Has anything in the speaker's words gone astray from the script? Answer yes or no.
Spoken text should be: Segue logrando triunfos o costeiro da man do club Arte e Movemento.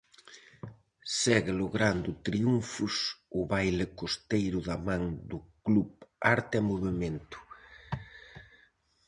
yes